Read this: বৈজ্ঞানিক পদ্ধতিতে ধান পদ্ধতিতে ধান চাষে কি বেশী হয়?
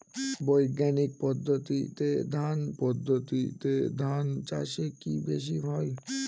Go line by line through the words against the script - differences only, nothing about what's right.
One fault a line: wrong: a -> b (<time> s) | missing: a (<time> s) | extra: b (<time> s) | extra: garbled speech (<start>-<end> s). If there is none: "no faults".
no faults